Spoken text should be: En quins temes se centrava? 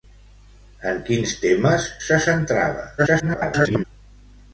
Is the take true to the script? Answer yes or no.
no